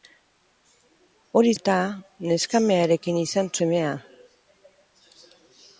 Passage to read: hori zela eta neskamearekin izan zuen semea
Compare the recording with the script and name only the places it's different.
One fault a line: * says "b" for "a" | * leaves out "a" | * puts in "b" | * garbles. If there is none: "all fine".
* leaves out "zela"
* leaves out "zuen"